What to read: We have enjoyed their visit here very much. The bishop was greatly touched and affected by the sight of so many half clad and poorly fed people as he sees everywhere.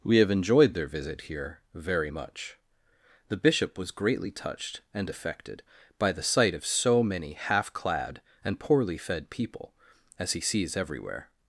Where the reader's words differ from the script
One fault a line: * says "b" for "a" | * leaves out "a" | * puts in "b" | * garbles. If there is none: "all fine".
all fine